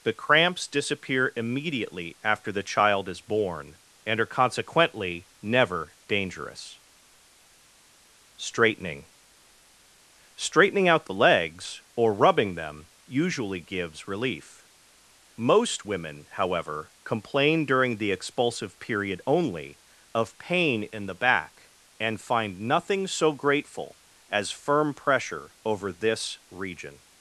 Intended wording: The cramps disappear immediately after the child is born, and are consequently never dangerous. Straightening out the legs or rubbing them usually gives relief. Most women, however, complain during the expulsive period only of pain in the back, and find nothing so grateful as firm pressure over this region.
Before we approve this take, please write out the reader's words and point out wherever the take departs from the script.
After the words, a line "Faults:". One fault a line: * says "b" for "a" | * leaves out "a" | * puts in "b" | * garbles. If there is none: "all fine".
The cramps disappear immediately after the child is born, and are consequently never dangerous. Straightening Straightening out the legs or rubbing them usually gives relief. Most women, however, complain during the expulsive period only of pain in the back, and find nothing so grateful as firm pressure over this region.
Faults:
* puts in "Straightening"